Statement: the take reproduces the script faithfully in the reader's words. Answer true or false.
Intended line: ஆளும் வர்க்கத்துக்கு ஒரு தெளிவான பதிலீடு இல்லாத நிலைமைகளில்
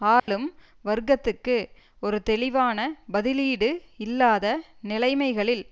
true